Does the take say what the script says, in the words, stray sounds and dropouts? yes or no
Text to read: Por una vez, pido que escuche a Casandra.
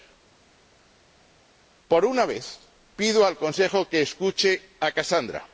no